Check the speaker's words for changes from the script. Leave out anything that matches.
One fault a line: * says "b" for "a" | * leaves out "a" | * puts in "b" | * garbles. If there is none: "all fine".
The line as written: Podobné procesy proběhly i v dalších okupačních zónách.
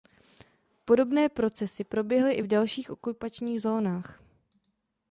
all fine